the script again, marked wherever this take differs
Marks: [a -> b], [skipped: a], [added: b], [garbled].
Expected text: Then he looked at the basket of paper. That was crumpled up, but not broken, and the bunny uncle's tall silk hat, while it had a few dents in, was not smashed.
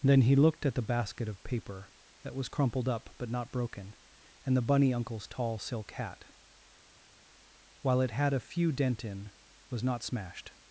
Then he looked at the basket of paper. That was crumpled up, but not broken, and the bunny uncle's tall silk hat, while it had a few [dents -> dent] in, was not smashed.